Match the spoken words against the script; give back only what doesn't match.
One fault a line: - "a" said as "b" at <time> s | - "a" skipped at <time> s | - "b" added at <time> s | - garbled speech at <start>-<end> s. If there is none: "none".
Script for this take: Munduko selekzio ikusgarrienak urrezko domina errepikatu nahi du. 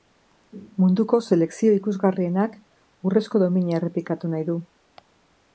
none